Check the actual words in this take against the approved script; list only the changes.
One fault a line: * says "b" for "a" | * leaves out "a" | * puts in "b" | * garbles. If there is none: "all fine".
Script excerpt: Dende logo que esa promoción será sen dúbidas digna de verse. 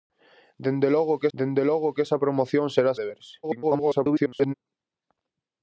* puts in "dende logo que"
* leaves out "sen dúbidas digna"
* garbles